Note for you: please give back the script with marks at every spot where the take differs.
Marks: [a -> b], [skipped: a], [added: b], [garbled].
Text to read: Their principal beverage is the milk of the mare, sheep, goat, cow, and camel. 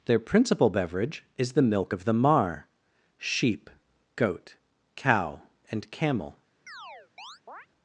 Their principal beverage is the milk of the [mare, -> mar] sheep, goat, cow, and camel.